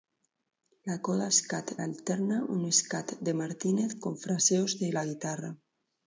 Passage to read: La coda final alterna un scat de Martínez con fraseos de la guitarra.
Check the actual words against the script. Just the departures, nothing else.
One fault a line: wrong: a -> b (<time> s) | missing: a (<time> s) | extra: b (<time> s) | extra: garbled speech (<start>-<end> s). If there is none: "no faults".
wrong: final -> scat (1.4 s)